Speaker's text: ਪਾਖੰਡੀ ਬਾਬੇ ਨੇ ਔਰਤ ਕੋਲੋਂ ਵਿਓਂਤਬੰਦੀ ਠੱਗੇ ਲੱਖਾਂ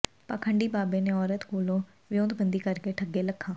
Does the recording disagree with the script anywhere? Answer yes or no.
yes